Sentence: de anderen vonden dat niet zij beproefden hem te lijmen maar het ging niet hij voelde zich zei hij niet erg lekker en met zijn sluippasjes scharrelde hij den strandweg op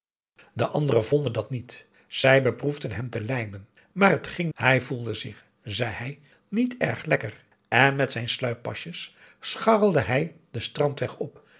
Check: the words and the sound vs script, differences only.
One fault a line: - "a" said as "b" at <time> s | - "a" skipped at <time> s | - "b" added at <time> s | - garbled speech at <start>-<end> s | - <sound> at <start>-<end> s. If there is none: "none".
- "niet" skipped at 4.5 s